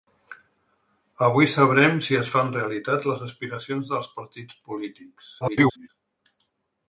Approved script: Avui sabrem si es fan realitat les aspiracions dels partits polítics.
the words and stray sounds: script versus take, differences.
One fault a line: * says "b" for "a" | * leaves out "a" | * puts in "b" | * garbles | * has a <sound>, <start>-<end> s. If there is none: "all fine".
* garbles